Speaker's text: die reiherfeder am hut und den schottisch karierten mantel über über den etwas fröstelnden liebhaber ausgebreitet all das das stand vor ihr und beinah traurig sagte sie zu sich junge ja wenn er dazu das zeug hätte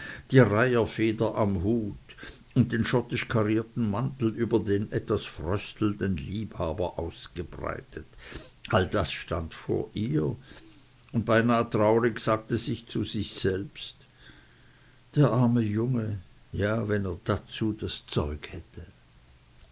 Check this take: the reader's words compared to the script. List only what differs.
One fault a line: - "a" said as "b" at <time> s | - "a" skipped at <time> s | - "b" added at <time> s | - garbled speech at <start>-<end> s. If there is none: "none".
- "über" skipped at 4.6 s
- "das" skipped at 9.1 s
- "selbst der arme" added at 13.3 s